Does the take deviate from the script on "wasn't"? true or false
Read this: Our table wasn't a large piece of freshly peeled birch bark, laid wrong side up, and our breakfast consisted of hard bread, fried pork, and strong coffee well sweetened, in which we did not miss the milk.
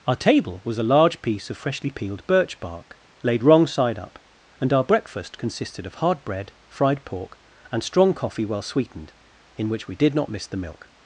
true